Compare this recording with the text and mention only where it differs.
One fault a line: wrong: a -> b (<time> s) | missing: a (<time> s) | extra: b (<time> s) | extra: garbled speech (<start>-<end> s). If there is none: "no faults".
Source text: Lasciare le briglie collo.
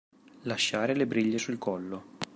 extra: sul (1.4 s)